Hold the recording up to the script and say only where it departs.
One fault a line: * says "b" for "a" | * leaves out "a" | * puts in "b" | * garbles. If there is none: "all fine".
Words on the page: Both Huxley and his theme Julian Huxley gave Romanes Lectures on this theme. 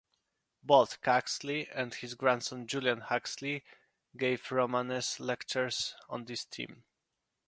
* says "grandson" for "theme"